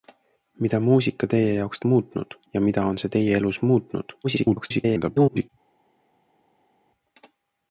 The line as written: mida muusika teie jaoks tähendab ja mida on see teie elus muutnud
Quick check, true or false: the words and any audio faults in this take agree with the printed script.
false